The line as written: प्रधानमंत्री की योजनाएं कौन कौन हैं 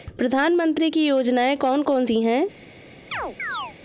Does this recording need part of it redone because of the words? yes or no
yes